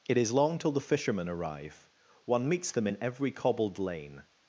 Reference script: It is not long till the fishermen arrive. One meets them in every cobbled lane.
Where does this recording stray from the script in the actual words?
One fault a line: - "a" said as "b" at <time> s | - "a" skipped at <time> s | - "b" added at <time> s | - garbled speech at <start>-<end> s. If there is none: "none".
- "not" skipped at 0.3 s